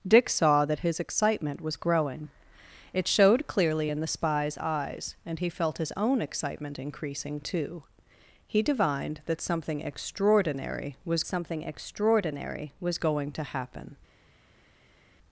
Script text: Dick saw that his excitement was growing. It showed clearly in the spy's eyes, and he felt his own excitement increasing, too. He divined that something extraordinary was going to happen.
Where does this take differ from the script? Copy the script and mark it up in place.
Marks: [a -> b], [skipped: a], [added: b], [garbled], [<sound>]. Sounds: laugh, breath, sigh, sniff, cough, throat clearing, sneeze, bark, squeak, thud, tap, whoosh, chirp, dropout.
Dick saw that his excitement was growing. It showed clearly in the spy's eyes, and he felt his own excitement increasing, too. He divined that something extraordinary was [added: something extraordinary was] going to happen.